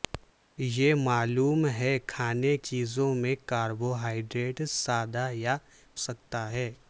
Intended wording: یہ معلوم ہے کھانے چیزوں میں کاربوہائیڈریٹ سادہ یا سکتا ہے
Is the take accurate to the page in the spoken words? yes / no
yes